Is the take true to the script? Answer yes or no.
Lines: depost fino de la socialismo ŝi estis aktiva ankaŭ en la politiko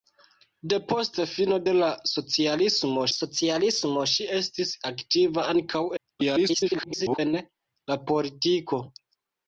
no